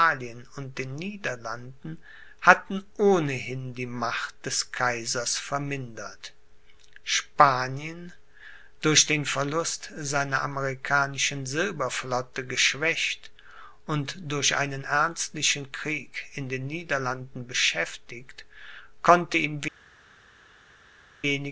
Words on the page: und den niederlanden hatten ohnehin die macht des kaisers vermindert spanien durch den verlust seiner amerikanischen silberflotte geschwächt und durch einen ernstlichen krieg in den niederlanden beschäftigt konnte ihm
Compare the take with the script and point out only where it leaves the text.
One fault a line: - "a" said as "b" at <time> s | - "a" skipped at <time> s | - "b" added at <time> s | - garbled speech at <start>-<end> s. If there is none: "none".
none